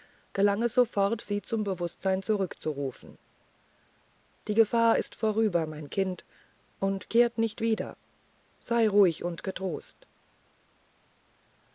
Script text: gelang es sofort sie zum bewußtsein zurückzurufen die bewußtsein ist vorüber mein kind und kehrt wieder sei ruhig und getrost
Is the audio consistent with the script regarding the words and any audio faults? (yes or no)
no